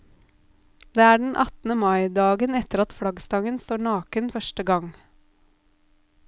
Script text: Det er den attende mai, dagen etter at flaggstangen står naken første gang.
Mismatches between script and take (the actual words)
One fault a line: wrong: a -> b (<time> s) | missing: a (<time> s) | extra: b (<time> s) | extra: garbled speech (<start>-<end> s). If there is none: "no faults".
no faults